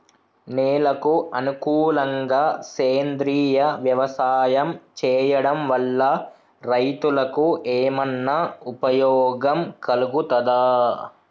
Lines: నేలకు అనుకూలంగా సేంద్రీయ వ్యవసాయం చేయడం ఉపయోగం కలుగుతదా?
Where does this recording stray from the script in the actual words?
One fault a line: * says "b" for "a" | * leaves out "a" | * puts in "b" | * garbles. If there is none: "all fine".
* puts in "వల్ల రైతులకు ఏమన్నా"